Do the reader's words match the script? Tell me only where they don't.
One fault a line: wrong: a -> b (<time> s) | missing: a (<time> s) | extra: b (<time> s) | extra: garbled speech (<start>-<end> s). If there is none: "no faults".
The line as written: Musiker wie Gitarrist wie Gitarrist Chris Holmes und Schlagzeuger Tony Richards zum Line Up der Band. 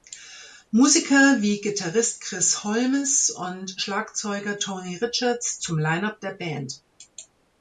missing: wie Gitarrist (2.2 s)